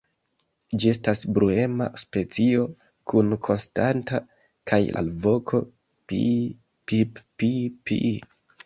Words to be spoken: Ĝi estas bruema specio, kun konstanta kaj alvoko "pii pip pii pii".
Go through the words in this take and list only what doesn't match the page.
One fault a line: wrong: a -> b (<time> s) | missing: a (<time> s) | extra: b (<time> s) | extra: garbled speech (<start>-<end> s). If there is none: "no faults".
no faults